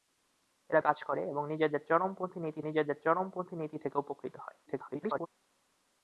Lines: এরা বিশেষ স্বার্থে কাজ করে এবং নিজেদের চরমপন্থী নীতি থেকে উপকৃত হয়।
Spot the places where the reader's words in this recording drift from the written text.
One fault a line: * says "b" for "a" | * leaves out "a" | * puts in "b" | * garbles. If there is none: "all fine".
* leaves out "বিশেষ স্বার্থে"
* puts in "নিজেদের চরমপন্থী নীতি"
* garbles